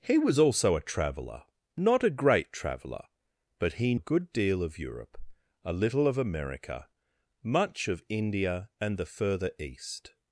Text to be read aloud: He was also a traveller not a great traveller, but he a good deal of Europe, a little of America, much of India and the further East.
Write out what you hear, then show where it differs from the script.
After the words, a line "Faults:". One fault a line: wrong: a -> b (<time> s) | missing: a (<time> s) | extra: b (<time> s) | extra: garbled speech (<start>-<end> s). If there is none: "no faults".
He was also a traveller not a great traveller, but he a good deal of Europe, a little of America, much of India and the further East.
Faults:
no faults